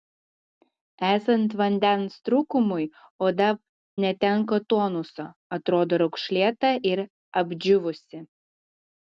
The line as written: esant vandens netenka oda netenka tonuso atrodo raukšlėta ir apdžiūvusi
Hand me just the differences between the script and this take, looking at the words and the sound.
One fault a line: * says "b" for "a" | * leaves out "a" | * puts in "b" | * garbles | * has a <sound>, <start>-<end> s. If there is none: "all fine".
* says "trūkumui" for "netenka"